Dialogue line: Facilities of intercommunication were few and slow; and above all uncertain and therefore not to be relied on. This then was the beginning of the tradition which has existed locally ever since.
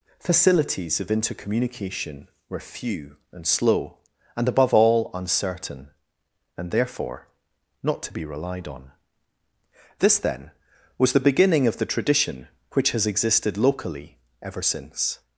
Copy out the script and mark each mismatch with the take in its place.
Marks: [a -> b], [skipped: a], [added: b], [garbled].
Facilities of intercommunication were few and slow; and above all uncertain and therefore not to be relied on. This then was the beginning of the tradition which has existed locally ever since.